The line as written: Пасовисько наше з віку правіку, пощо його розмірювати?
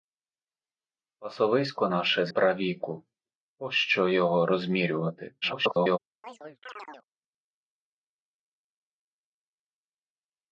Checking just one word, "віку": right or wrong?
wrong